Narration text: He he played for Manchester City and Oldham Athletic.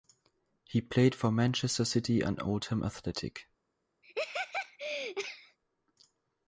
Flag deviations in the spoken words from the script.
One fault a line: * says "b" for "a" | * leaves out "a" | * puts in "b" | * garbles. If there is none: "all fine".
* leaves out "he"